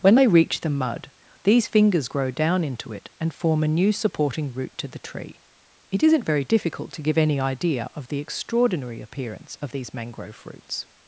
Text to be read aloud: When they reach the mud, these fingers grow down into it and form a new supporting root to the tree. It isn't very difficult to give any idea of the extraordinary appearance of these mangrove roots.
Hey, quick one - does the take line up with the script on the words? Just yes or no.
yes